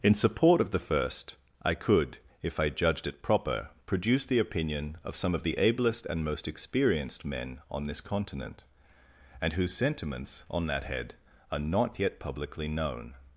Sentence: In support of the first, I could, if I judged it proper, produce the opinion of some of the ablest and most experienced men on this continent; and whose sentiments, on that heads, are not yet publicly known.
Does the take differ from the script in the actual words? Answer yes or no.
yes